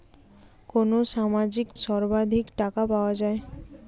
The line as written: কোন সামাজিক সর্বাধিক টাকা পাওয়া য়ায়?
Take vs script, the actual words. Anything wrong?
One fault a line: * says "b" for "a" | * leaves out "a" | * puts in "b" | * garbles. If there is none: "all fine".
all fine